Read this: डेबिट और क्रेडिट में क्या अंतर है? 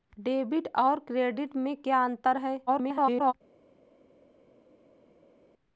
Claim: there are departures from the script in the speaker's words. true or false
true